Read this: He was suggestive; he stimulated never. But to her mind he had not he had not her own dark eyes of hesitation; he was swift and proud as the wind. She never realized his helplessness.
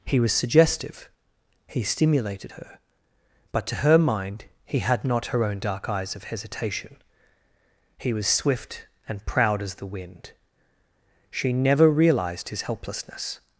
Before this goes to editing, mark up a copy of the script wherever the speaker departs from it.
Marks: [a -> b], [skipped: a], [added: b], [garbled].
He was suggestive; he stimulated [never. -> her] But to her mind he had not [skipped: he had not] her own dark eyes of hesitation; he was swift and proud as the wind. She never realized his helplessness.